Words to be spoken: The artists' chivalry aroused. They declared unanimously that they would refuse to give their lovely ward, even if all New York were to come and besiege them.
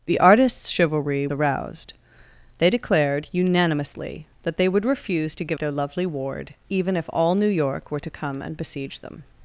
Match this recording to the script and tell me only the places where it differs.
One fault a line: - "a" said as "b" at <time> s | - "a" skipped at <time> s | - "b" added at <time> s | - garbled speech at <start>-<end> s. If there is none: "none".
none